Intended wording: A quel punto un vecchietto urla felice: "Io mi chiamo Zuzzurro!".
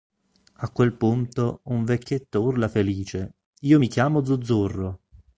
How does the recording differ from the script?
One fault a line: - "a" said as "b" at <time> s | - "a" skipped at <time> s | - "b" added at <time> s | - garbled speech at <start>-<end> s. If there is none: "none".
none